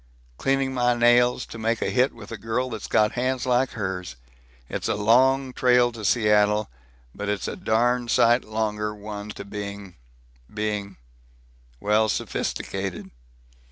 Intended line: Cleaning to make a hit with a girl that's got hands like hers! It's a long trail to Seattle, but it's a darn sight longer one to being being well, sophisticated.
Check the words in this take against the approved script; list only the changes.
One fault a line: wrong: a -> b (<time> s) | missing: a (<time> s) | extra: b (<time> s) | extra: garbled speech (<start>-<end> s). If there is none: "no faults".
extra: my nails (0.7 s)